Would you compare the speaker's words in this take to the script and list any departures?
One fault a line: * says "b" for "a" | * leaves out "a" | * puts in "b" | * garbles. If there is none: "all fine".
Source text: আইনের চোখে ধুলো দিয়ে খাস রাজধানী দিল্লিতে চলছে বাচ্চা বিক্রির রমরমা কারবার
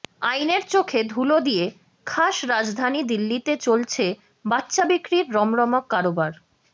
all fine